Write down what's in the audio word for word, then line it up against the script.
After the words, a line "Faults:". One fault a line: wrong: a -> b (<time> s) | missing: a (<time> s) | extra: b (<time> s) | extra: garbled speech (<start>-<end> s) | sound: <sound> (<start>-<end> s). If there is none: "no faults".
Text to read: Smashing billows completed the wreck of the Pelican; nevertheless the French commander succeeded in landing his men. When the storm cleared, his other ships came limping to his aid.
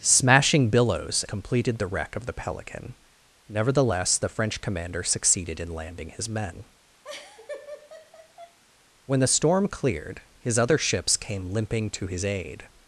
Smashing billows completed the wreck of the Pelican; nevertheless the French commander succeeded in landing his men. When the storm cleared, his other ships came limping to his aid.
Faults:
sound: laugh (7.0-8.6 s)